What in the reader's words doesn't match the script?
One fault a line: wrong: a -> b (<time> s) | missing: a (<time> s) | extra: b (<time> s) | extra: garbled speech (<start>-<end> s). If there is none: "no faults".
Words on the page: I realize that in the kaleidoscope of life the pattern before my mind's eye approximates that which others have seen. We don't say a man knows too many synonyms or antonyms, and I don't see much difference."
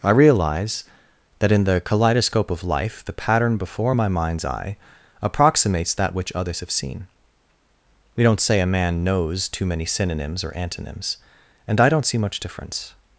no faults